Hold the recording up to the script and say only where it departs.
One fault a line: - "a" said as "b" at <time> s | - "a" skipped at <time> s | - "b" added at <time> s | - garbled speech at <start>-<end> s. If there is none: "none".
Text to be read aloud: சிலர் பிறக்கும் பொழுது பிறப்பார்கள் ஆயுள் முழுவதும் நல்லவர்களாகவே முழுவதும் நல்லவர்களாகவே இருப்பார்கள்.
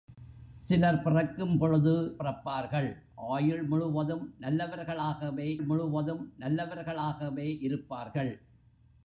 none